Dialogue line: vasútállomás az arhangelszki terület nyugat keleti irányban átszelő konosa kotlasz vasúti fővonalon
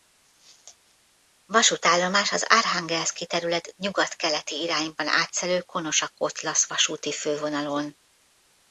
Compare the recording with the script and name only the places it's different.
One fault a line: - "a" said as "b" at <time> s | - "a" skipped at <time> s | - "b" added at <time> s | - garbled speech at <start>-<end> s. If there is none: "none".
none